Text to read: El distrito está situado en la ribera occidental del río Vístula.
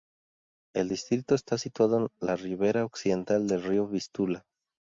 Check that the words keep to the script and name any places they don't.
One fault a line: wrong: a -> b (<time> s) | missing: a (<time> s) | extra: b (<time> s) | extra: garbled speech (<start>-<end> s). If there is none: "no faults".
no faults